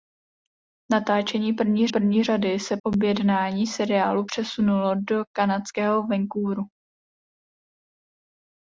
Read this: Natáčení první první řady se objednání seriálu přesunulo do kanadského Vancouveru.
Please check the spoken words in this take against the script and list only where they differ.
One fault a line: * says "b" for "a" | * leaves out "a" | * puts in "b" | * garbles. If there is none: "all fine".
all fine